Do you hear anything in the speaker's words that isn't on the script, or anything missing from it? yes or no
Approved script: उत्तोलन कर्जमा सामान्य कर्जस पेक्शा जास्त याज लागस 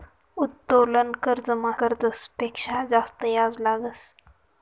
yes